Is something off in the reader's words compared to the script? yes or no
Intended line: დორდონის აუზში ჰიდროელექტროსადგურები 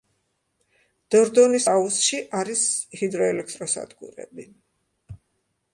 yes